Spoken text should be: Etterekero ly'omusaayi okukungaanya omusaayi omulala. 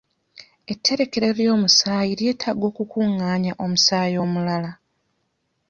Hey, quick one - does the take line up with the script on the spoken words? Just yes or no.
no